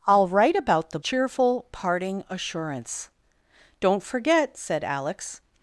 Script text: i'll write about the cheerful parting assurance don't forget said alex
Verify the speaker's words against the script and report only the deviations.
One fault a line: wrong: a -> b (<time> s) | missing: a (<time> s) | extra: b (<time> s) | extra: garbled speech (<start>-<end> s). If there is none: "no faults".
no faults